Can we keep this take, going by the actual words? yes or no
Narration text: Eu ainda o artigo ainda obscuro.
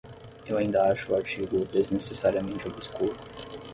no